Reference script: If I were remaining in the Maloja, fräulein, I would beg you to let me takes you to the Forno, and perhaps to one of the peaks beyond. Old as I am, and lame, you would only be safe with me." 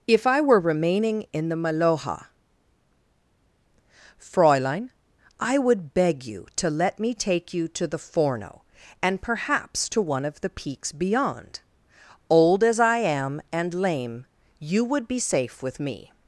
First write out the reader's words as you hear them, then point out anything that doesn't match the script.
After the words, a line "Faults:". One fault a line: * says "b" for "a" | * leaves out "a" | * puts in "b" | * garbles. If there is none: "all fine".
If I were remaining in the Maloja, fräulein, I would beg you to let me take you to the Forno, and perhaps to one of the peaks beyond. Old as I am, and lame, you would be safe with me."
Faults:
* says "take" for "takes"
* leaves out "only"